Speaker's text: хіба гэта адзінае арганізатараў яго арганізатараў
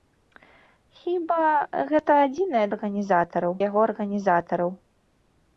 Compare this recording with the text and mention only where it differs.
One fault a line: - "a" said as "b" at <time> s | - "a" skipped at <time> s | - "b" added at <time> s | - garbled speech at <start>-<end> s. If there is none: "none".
none